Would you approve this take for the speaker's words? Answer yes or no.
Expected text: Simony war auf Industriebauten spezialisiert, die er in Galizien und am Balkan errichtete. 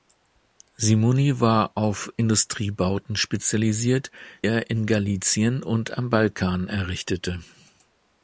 no